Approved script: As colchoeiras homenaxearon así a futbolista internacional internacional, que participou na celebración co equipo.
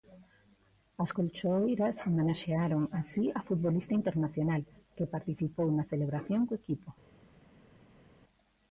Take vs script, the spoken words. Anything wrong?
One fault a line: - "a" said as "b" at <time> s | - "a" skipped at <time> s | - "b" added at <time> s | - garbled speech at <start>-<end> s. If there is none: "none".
- "internacional" skipped at 4.6 s